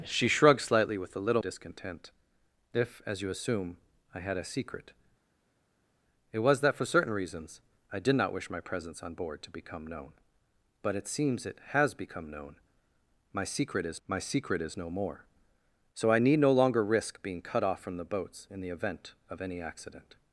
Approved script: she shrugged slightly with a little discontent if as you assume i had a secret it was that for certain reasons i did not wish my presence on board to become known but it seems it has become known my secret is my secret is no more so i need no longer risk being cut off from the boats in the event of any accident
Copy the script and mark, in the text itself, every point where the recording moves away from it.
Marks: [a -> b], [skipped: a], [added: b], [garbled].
she shrugged slightly with a little discontent if as you assume i had a secret it was that for certain reasons i did not wish my presence on board to become known but it seems it has become known my secret is my secret is no more so i need no longer risk being cut off from the boats in the event of any accident